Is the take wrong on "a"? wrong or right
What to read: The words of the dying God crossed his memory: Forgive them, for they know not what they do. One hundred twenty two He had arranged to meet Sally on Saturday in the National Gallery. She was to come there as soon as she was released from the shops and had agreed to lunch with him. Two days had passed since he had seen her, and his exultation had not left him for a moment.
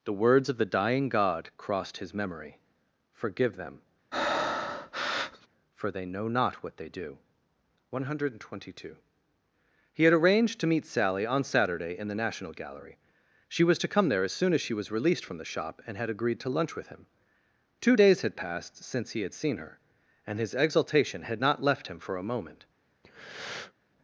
right